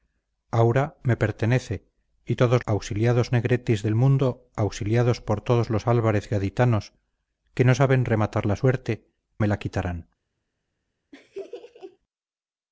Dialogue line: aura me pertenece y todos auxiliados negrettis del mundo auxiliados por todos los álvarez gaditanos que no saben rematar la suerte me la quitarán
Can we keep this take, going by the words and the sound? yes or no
no